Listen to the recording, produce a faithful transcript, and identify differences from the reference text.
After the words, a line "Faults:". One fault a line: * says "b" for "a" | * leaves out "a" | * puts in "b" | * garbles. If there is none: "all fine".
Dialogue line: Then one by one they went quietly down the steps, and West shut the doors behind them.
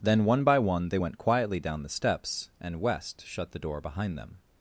Then one by one they went quietly down the steps, and West shut the door behind them.
Faults:
* says "door" for "doors"